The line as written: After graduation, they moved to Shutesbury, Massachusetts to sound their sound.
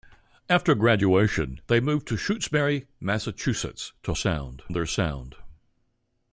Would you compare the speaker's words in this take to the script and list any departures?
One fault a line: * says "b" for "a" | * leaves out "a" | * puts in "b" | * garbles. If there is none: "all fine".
all fine